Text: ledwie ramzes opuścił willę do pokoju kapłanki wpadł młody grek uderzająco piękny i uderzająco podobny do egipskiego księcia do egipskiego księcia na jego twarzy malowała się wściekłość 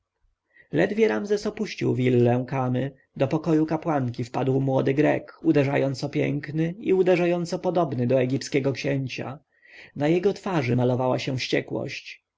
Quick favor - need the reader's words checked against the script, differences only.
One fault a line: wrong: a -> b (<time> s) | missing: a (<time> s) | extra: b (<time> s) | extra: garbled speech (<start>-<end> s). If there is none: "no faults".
extra: kamy (2.5 s)
missing: do egipskiego księcia (9.4 s)